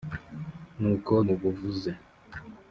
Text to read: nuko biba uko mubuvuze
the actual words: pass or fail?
fail